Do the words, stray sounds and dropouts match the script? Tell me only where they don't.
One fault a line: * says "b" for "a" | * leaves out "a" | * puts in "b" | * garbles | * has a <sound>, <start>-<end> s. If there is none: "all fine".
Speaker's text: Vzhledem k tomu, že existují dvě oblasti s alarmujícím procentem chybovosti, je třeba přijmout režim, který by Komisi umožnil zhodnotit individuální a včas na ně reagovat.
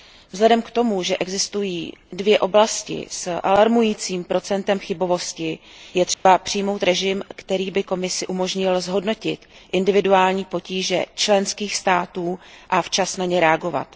* has a dropout, 6.1-6.3 s
* puts in "potíže členských států"